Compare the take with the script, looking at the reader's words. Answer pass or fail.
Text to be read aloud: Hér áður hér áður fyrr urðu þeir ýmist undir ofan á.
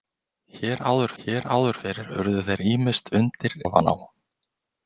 pass